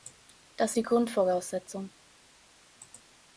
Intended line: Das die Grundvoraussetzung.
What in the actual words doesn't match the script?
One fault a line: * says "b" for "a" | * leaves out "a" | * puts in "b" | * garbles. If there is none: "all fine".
all fine